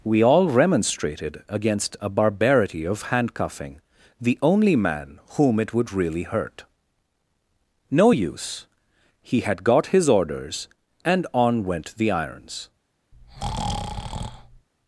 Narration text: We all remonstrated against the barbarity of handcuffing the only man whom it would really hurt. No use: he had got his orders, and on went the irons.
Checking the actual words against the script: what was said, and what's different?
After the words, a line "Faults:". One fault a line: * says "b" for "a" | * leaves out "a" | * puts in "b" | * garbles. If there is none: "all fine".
We all remonstrated against a barbarity of handcuffing the only man whom it would really hurt. No use: he had got his orders, and on went the irons.
Faults:
* says "a" for "the"